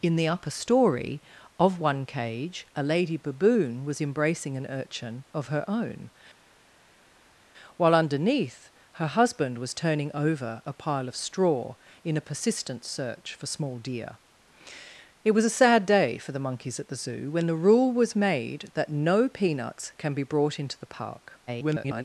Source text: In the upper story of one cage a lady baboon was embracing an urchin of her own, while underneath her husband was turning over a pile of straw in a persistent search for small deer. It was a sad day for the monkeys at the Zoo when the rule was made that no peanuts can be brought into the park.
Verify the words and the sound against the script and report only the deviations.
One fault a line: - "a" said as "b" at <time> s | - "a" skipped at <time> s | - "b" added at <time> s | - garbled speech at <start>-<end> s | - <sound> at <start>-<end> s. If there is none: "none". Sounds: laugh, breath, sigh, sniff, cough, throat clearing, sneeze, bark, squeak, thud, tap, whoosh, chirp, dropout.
- garbled speech at 21.5-22.0 s